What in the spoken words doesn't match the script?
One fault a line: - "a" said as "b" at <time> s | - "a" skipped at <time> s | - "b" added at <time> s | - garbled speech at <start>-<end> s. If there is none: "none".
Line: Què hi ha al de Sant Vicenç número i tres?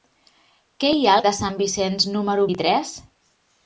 none